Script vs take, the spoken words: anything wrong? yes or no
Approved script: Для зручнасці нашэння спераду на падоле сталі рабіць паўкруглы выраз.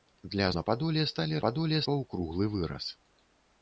yes